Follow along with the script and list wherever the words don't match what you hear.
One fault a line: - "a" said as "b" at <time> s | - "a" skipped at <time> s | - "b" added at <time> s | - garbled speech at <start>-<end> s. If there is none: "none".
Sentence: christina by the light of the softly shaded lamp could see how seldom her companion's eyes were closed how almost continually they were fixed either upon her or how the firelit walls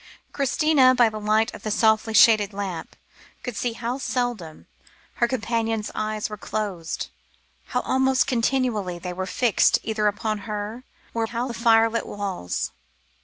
none